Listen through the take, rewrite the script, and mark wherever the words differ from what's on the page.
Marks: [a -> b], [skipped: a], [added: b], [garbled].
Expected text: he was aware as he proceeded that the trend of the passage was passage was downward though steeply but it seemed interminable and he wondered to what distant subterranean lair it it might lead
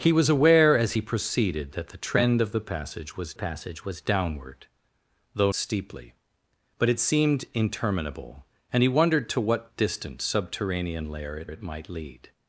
he was aware as he proceeded that the trend of the passage was passage was downward though steeply but it seemed interminable and he wondered to what distant subterranean lair it it might lead